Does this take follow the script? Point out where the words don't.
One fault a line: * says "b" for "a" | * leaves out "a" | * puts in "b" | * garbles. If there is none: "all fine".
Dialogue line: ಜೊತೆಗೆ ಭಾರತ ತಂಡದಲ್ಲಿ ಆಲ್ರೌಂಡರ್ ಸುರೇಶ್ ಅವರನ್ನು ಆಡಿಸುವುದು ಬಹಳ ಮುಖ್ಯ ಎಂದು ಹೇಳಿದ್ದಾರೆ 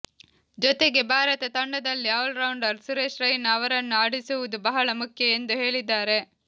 * puts in "ರೈನಾ"